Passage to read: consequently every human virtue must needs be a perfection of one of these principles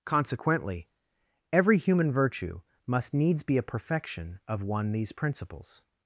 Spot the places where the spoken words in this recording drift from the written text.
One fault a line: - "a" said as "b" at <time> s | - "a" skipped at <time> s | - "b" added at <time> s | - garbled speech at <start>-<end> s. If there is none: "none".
- "of" skipped at 4.9 s